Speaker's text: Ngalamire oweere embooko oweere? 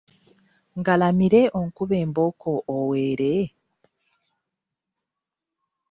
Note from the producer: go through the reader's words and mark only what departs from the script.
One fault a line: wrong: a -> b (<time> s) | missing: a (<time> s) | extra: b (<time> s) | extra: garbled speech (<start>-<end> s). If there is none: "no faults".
wrong: oweere -> onkube (1.6 s)